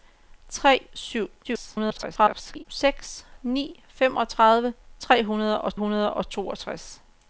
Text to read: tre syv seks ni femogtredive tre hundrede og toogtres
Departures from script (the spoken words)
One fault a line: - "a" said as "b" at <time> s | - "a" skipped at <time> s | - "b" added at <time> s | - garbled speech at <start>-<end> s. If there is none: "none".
- garbled speech at 1.4-2.7 s
- "hundrede og" added at 5.8 s